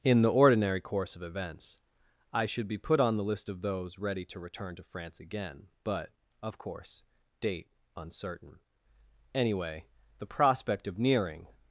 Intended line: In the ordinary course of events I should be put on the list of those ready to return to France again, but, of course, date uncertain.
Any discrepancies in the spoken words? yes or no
yes